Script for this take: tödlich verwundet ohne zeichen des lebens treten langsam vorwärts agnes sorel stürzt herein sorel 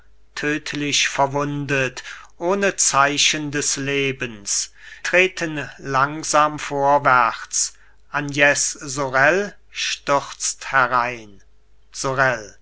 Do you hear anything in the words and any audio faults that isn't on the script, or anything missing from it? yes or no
no